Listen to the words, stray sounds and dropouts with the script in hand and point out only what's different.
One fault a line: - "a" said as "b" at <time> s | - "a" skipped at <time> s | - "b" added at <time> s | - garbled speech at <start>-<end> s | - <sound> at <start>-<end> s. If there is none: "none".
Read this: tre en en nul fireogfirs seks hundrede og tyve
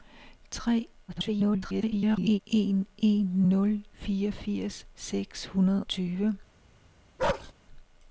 - garbled speech at 1.1-2.4 s
- "og" skipped at 5.8 s
- bark at 7.2-7.5 s